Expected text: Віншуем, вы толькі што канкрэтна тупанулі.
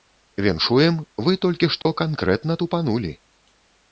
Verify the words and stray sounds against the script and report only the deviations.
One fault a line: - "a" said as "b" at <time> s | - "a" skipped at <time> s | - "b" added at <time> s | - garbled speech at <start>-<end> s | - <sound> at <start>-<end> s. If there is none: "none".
- dropout at 1.8-1.9 s